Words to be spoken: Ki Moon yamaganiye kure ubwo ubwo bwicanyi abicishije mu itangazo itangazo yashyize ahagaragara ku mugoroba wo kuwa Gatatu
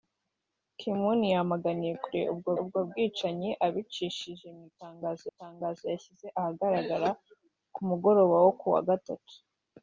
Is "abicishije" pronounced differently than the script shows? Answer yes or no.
no